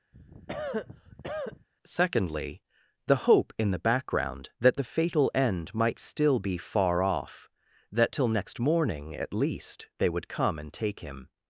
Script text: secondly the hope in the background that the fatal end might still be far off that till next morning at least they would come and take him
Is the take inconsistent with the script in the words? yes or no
no